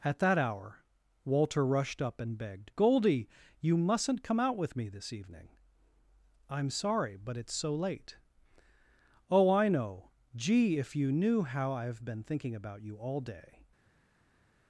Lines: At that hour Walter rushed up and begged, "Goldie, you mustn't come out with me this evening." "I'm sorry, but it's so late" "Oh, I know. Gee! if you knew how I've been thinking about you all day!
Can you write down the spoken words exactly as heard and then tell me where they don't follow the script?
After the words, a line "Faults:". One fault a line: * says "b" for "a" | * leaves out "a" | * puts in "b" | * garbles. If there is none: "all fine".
At that hour Walter rushed up and begged, "Goldie, you mustn't come out with me this evening." "I'm sorry, but it's so late" "Oh, I know. Gee! if you knew how I've been thinking about you all day!
Faults:
all fine